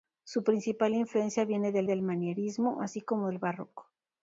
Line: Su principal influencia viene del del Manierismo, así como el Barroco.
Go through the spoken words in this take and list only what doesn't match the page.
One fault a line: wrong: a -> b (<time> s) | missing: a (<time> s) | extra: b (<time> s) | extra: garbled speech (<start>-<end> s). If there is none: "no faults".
no faults